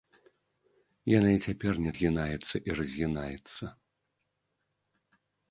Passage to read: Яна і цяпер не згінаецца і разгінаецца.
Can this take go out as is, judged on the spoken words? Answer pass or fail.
pass